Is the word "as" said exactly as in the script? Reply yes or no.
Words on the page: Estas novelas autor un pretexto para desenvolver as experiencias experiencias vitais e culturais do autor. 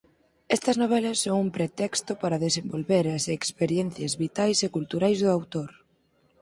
yes